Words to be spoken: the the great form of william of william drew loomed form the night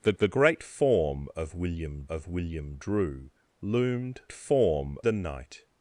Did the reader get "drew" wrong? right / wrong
right